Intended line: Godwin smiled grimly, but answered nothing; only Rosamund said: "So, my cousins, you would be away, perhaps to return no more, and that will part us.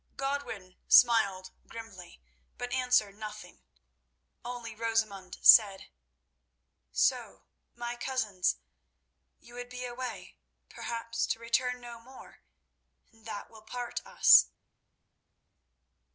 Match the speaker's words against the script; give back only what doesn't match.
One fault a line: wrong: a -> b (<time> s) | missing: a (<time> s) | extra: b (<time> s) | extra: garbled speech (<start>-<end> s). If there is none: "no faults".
no faults